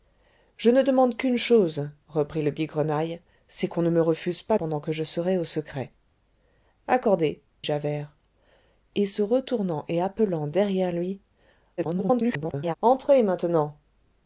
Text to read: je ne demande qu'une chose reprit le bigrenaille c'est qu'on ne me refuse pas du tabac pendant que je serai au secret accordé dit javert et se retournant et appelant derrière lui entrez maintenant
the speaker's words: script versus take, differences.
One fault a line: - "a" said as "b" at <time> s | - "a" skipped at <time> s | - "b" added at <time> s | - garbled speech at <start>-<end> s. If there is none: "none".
- "du tabac" skipped at 4.6 s
- "dit" skipped at 7.4 s
- garbled speech at 11.8-12.7 s